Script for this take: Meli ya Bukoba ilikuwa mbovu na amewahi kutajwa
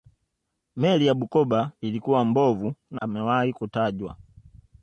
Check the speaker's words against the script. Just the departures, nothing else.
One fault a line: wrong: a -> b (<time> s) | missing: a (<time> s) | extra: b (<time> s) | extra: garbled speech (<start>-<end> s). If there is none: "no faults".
no faults